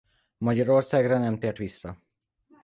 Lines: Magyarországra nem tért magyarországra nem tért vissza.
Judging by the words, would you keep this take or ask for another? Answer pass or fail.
fail